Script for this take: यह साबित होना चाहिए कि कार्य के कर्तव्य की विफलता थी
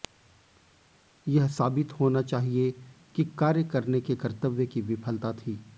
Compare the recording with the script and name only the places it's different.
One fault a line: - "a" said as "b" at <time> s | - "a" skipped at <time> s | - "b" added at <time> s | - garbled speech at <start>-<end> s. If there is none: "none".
- "करने" added at 3.6 s